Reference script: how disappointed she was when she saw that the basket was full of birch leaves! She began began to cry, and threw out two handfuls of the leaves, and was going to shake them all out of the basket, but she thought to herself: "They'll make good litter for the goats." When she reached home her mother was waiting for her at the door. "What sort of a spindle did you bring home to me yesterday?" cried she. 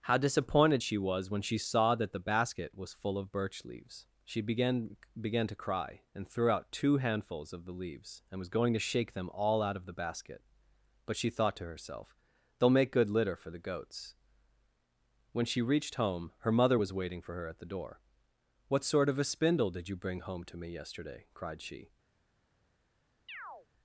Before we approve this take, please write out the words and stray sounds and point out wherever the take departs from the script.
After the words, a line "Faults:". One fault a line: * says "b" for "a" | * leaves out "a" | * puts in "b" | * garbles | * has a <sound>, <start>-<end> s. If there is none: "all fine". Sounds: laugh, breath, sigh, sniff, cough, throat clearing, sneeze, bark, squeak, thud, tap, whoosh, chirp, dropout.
how disappointed she was when she saw that the basket was full of birch leaves! She began began to cry, and threw out two handfuls of the leaves, and was going to shake them all out of the basket, but she thought to herself: "They'll make good litter for the goats." When she reached home her mother was waiting for her at the door. "What sort of a spindle did you bring home to me yesterday?" cried she.
Faults:
* has a chirp, 23.3-23.7 s